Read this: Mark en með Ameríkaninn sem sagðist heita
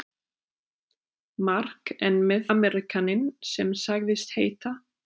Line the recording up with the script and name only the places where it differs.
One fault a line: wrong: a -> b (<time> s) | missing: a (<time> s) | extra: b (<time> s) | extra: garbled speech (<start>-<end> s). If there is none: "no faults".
no faults